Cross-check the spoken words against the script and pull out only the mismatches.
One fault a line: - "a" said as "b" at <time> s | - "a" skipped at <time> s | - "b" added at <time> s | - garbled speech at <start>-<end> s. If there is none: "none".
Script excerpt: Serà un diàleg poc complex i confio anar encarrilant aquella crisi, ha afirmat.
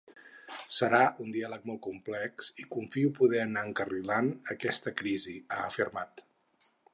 - "poc" said as "molt" at 1.7 s
- "poder" added at 3.2 s
- "aquella" said as "aquesta" at 4.5 s